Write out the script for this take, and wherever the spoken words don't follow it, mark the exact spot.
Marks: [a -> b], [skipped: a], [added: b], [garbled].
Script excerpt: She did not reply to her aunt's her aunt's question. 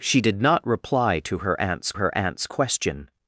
She did not reply to her aunt's her aunt's question.